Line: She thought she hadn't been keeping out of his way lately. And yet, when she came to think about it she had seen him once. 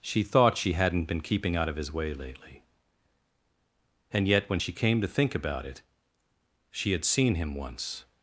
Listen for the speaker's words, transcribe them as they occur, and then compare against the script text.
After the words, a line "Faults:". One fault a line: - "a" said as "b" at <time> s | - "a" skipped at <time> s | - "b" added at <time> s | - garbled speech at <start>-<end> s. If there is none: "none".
She thought she hadn't been keeping out of his way lately. And yet, when she came to think about it she had seen him once.
Faults:
none